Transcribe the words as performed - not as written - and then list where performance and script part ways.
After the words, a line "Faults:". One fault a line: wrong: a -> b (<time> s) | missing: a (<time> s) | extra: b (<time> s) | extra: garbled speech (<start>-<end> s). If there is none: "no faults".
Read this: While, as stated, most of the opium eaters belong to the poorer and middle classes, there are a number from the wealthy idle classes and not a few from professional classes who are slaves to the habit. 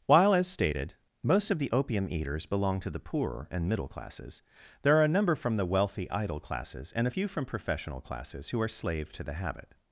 While, as stated, most of the opium eaters belong to the poorer and middle classes, there are a number from the wealthy idle classes and a few from professional classes who are slave to the habit.
Faults:
missing: not (7.0 s)
wrong: slaves -> slave (8.7 s)